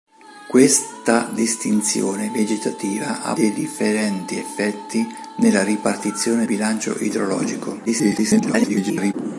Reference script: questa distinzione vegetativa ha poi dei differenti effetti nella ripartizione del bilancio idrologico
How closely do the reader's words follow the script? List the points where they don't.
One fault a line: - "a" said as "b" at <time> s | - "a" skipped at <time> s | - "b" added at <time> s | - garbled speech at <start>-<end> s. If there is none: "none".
- "poi" skipped at 3.4 s
- "del" skipped at 6.4 s
- garbled speech at 7.9-9.1 s